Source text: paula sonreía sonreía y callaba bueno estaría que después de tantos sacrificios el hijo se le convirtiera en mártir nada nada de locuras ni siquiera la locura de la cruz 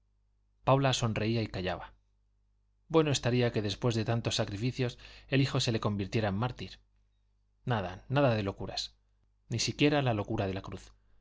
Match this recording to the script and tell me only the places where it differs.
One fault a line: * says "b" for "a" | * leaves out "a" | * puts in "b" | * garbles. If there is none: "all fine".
* leaves out "sonreía"